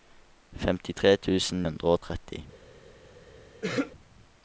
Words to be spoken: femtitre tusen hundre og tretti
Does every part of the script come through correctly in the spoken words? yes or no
yes